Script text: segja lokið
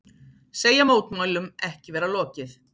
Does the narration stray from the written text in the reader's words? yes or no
yes